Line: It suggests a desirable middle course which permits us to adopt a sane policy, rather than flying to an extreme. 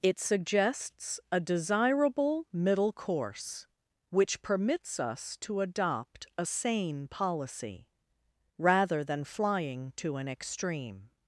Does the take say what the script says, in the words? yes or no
yes